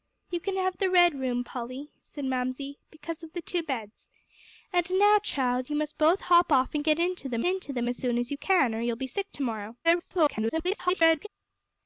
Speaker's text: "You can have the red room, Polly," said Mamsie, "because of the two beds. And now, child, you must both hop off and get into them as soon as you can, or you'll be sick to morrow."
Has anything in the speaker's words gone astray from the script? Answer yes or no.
yes